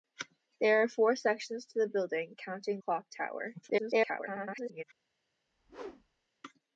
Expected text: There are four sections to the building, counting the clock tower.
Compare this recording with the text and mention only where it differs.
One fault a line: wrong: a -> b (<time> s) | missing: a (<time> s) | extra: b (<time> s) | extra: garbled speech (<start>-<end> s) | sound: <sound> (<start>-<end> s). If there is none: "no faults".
missing: the (2.8 s)
extra: garbled speech (3.6-4.8 s)
sound: whoosh (5.5-6.3 s)